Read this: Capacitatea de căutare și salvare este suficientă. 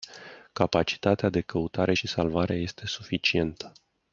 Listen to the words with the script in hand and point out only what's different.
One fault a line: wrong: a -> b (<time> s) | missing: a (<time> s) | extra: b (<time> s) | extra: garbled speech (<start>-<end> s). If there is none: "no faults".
no faults